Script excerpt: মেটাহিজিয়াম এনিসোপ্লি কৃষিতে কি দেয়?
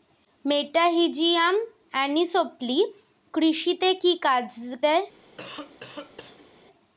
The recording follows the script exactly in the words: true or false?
true